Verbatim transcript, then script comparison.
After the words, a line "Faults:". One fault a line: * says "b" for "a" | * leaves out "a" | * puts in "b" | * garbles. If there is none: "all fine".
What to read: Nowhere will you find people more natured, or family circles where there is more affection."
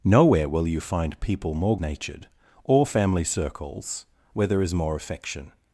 Nowhere will you find people more natured, or family circles where there is more affection."
Faults:
all fine